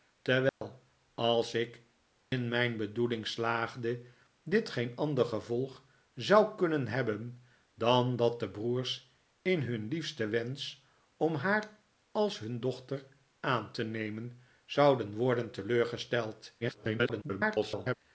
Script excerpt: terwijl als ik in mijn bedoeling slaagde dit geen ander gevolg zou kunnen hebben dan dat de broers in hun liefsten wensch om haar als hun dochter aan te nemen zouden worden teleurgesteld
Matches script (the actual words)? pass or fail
fail